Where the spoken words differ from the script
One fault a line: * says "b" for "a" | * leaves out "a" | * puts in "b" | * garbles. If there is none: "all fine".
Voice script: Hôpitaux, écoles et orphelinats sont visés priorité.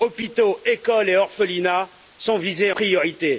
all fine